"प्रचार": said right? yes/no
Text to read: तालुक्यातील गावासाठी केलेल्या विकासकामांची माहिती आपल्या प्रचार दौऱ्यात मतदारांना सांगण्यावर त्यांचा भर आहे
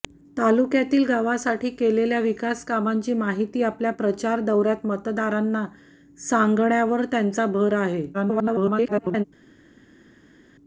yes